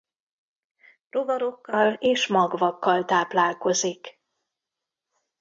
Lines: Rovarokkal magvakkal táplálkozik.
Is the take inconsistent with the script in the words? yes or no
yes